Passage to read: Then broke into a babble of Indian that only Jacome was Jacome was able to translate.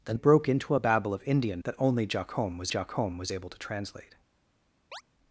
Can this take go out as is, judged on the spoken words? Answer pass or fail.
pass